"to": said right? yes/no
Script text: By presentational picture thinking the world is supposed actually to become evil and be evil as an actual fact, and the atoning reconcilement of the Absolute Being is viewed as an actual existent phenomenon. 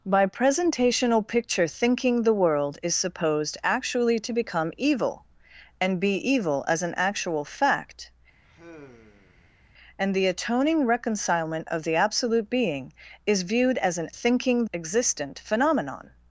yes